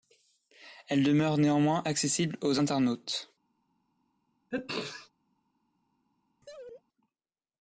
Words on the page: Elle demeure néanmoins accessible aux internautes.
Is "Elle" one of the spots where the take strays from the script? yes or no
no